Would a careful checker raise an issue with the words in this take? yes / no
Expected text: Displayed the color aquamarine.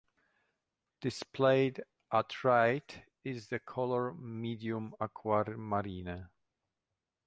yes